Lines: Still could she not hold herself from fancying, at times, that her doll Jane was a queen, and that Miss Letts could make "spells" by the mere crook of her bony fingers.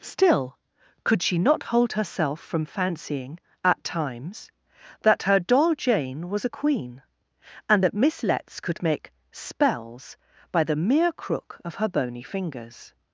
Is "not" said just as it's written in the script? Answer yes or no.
yes